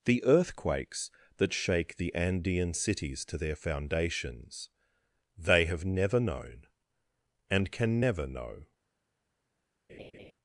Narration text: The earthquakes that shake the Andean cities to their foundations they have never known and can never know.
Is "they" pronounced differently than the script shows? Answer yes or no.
no